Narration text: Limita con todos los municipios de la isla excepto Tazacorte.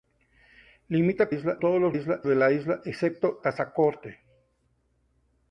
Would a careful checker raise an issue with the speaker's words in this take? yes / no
yes